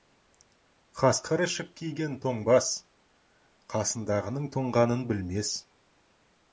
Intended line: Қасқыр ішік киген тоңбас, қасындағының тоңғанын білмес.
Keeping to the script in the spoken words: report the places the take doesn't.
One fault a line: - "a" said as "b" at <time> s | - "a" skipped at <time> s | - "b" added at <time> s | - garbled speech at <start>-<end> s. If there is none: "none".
none